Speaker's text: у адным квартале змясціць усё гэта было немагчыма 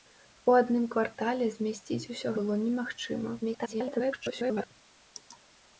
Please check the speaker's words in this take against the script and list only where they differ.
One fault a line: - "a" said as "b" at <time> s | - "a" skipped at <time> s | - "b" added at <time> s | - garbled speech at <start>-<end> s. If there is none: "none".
- "гэта" skipped at 2.3 s
- garbled speech at 3.4-4.7 s